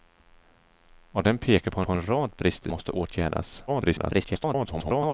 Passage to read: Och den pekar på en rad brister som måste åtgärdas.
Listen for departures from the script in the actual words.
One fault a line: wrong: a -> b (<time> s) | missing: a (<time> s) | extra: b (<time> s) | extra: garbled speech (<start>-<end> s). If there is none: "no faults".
extra: på (1.8 s)
missing: som (2.7 s)
extra: garbled speech (3.7-5.1 s)